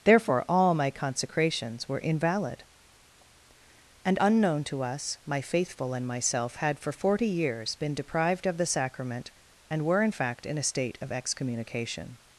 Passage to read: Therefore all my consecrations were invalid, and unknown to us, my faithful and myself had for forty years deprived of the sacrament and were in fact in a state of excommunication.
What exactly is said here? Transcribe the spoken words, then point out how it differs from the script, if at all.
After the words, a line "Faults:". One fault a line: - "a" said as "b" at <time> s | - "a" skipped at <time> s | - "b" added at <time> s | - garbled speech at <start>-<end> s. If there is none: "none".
Therefore all my consecrations were invalid, and unknown to us, my faithful and myself had for forty years been deprived of the sacrament and were in fact in a state of excommunication.
Faults:
- "been" added at 7.7 s